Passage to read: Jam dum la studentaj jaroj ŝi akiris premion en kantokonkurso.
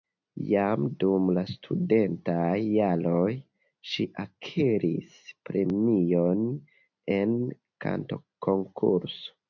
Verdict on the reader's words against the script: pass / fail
pass